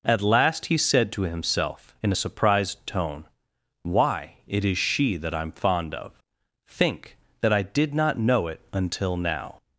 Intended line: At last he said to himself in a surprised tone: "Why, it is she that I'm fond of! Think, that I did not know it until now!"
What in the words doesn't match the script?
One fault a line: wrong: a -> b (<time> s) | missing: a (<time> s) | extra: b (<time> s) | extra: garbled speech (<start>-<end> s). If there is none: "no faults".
no faults